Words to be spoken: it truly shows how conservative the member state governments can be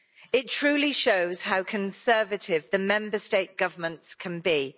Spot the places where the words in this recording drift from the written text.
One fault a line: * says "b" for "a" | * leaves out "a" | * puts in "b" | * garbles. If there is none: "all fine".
all fine